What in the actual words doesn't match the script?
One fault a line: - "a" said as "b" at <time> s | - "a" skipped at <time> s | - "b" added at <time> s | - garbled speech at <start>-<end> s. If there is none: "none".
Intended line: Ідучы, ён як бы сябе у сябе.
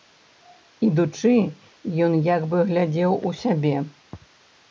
- "сябе" said as "глядзеў" at 2.7 s